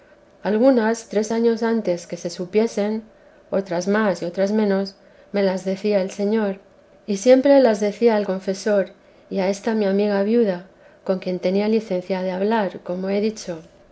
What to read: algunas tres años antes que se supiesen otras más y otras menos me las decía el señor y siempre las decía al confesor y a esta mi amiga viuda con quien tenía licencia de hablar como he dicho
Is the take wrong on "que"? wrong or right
right